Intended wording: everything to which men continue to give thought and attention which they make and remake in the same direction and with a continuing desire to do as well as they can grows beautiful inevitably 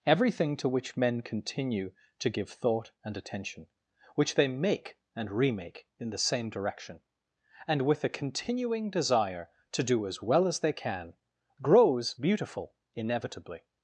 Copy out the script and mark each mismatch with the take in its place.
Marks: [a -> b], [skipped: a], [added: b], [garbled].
everything to which men continue to give thought and attention which they make and remake in the same direction and with a continuing desire to do as well as they can grows beautiful inevitably